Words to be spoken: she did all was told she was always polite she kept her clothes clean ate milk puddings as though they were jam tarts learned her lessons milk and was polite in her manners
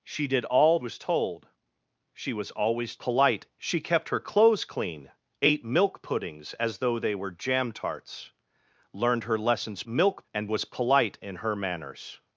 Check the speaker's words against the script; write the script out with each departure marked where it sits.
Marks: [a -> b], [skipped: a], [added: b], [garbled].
she did all was told she was always polite she kept her clothes clean ate milk puddings as though they were jam tarts learned her lessons milk and was polite in her manners